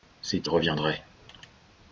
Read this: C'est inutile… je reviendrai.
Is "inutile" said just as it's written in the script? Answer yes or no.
no